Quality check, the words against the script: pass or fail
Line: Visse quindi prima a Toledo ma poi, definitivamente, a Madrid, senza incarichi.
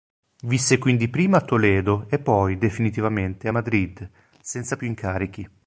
fail